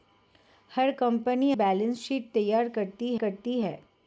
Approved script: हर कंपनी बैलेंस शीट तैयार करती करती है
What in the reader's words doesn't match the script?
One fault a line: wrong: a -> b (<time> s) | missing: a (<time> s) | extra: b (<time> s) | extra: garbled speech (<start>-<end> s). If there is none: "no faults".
no faults